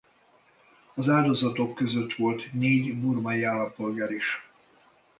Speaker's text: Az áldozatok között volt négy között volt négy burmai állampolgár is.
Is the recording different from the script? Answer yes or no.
yes